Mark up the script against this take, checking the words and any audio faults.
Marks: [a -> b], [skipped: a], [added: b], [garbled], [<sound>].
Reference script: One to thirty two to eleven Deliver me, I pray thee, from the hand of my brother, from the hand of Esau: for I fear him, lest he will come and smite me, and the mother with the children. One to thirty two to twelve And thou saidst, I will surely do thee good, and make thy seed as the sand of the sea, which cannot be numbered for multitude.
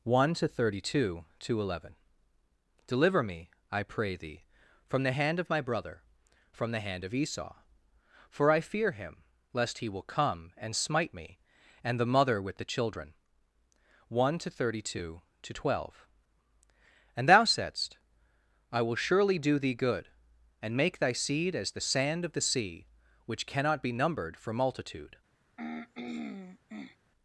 One to thirty two to eleven Deliver me, I pray thee, from the hand of my brother, from the hand of Esau: for I fear him, lest he will come and smite me, and the mother with the children. One to thirty two to twelve And thou saidst, I will surely do thee good, and make thy seed as the sand of the sea, which cannot be numbered for multitude. [throat clearing]